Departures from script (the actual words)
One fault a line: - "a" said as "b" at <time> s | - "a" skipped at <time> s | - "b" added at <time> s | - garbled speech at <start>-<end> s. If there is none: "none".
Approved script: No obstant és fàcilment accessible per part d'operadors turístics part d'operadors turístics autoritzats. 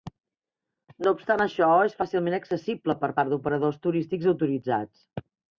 - "això" added at 1.4 s
- "part d'operadors turístics" skipped at 4.3 s